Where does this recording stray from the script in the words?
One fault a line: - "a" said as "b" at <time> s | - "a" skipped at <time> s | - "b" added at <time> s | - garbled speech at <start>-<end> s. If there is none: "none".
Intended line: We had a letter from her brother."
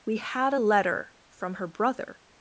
none